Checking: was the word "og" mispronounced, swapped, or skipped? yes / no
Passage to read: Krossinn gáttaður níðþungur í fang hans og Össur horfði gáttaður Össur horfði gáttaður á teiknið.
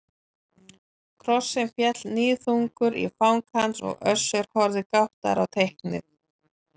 no